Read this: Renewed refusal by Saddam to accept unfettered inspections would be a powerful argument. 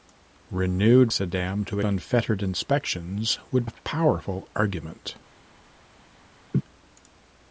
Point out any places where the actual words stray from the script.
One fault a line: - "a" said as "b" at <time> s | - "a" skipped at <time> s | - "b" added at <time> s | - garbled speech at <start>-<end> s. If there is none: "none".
- "refusal by" skipped at 1.1 s
- "accept" skipped at 1.8 s
- "be" skipped at 3.7 s